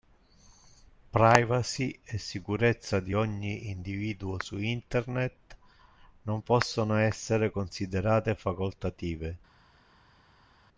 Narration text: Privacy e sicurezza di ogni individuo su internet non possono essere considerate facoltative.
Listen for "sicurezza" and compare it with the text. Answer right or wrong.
right